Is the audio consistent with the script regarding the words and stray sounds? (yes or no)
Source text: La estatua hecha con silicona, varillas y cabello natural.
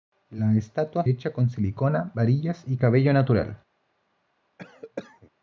no